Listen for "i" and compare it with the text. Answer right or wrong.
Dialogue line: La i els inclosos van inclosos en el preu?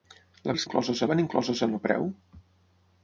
right